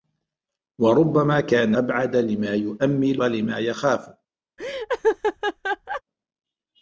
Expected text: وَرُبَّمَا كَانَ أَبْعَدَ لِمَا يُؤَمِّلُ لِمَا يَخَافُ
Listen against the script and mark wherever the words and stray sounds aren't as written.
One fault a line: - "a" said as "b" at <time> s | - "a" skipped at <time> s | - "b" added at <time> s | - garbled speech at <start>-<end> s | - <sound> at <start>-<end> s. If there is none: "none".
- laugh at 4.6-6.0 s